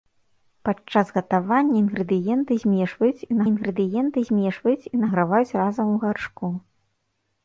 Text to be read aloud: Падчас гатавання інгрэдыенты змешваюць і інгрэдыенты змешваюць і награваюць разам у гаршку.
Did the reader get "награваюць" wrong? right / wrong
right